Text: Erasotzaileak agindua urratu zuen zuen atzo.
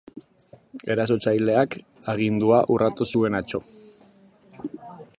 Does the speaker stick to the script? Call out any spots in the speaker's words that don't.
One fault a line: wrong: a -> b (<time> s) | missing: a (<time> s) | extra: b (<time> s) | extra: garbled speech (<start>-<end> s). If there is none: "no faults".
missing: zuen (3.4 s)